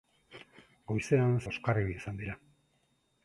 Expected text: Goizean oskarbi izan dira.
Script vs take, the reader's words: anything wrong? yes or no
no